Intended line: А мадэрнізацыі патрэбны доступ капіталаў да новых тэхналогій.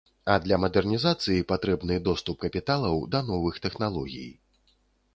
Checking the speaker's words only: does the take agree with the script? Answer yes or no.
no